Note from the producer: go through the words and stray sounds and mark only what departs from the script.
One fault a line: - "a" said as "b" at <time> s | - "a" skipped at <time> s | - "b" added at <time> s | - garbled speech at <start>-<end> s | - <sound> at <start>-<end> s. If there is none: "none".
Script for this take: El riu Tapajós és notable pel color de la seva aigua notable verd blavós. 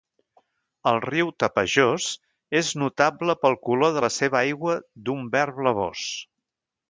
- "notable" said as "d'un" at 5.1 s